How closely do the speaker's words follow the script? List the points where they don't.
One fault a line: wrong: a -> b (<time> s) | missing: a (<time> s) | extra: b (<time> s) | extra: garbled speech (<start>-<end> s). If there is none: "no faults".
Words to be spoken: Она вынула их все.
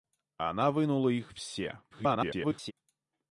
extra: garbled speech (1.9-2.7 s)